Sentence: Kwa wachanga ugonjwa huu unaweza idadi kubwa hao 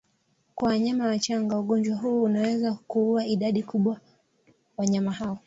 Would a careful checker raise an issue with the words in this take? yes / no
yes